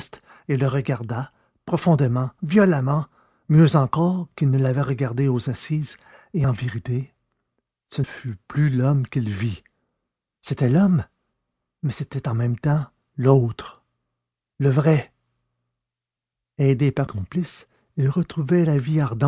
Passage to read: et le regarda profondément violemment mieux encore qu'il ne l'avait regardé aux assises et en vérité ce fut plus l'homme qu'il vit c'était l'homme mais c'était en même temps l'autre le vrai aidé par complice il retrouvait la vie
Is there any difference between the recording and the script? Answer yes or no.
no